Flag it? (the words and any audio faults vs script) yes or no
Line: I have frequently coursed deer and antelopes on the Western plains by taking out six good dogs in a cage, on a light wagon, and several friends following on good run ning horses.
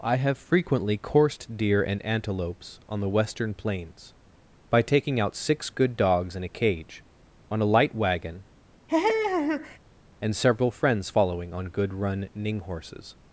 yes